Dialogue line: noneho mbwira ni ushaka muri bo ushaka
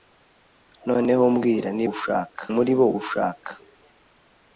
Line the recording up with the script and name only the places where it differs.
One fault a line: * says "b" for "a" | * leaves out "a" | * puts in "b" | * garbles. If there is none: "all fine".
all fine